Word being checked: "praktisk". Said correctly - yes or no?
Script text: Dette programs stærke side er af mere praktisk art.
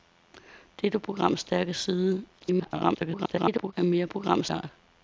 no